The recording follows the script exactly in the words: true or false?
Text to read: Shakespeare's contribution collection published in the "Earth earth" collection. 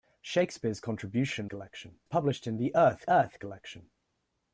true